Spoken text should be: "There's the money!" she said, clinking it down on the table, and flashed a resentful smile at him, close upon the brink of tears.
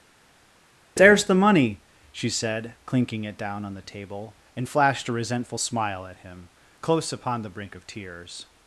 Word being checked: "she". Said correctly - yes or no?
yes